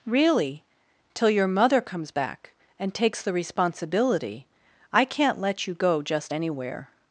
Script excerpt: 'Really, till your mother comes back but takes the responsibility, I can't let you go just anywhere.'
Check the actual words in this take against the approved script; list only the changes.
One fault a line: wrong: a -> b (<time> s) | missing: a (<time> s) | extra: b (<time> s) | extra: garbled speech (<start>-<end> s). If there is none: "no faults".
wrong: but -> and (2.8 s)